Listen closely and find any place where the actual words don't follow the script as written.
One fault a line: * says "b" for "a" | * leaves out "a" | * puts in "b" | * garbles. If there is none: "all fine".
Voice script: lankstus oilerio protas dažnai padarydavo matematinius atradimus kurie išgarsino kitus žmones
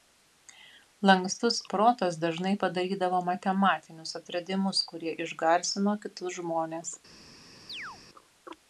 * leaves out "oilerio"